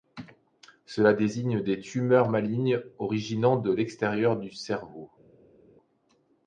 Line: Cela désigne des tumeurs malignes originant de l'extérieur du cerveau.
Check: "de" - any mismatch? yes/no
no